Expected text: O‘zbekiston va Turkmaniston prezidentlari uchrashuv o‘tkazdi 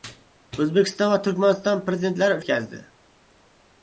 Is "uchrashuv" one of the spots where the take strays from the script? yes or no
yes